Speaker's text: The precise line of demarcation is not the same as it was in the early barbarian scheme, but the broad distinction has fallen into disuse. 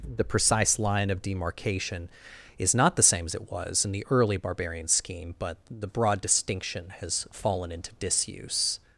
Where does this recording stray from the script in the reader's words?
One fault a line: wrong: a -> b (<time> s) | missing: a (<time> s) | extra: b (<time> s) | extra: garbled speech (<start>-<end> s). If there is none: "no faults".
no faults